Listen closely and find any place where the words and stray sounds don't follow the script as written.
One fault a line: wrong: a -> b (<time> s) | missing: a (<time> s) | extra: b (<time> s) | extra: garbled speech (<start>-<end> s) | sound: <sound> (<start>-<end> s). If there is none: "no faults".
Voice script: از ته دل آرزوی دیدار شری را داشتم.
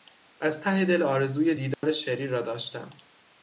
sound: dropout (1.7-1.8 s)